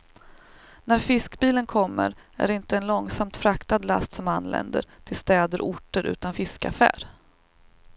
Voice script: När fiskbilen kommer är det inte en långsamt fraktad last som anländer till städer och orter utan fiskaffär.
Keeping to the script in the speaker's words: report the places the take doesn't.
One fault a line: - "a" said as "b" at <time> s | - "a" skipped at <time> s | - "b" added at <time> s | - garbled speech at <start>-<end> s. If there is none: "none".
none